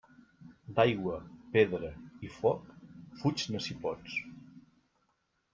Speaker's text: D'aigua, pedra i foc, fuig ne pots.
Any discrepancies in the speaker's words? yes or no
yes